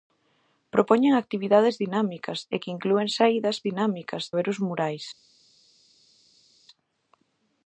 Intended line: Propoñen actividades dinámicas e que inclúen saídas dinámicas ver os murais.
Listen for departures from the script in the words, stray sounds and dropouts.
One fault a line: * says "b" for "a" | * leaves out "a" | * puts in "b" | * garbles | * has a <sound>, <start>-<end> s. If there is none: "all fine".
all fine